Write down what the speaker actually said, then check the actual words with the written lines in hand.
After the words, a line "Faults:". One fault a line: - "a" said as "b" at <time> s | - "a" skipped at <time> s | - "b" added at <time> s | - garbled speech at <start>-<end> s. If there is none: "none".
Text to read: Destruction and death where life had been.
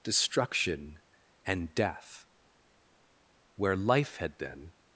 Destruction and death where life had been.
Faults:
none